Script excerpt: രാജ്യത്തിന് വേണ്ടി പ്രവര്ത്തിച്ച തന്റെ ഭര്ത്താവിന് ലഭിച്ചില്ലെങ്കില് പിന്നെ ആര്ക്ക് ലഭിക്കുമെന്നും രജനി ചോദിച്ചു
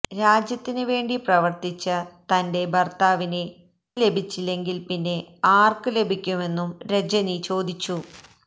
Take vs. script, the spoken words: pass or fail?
pass